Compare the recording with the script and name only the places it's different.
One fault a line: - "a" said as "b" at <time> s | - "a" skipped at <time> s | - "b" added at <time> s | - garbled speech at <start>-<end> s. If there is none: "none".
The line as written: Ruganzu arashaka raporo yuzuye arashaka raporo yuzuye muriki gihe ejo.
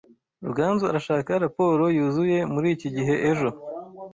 - "arashaka raporo yuzuye" skipped at 2.4 s